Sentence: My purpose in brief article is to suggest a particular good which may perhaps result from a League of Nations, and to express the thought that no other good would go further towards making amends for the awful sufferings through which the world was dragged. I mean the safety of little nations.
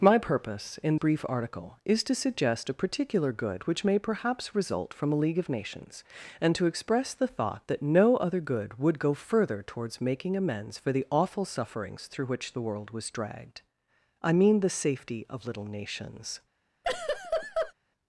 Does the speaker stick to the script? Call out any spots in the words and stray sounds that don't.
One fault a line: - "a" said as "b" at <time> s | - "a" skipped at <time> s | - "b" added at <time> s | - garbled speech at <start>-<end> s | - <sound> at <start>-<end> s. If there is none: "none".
- laugh at 16.8-17.7 s